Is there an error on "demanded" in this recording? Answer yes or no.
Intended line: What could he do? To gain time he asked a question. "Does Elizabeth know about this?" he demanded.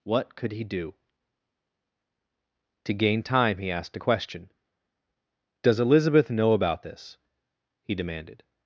no